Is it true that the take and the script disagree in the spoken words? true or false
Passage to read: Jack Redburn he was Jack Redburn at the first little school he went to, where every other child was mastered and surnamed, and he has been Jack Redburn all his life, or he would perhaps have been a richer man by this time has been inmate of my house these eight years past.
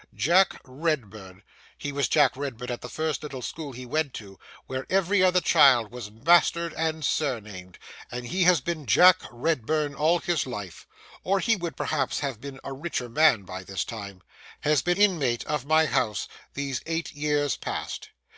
false